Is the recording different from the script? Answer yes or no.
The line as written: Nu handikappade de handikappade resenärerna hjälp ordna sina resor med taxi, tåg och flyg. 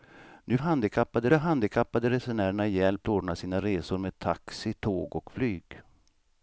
no